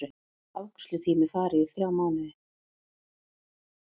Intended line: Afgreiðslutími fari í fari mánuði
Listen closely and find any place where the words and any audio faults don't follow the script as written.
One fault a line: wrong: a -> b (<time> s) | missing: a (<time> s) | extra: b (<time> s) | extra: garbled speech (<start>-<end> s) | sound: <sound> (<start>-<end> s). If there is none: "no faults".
wrong: fari -> þrjá (1.7 s)